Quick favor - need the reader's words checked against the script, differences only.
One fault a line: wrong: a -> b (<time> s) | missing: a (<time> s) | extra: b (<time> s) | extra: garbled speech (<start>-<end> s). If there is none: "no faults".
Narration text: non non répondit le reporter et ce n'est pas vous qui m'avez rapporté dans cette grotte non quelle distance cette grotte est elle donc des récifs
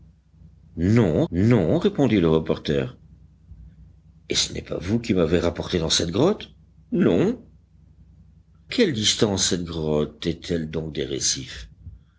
no faults